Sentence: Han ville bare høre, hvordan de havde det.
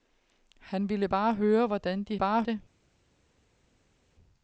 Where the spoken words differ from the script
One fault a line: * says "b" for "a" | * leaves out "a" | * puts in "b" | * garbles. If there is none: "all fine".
* says "bare" for "havde"